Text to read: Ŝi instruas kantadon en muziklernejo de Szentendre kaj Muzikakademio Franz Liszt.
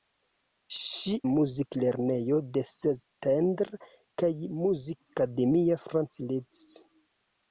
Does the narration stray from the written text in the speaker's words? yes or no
yes